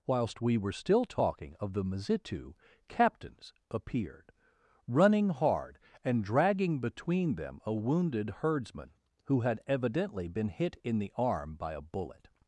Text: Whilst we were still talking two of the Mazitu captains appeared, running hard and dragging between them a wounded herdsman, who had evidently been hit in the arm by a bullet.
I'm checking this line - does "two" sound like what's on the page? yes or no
no